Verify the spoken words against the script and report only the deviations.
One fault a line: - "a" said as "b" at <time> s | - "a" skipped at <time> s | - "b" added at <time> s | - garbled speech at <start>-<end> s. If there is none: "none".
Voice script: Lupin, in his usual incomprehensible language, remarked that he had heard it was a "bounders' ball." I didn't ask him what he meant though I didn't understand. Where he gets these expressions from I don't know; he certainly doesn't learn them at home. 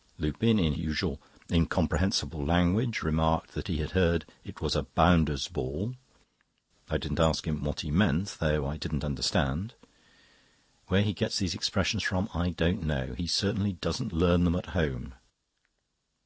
- "his" skipped at 0.7 s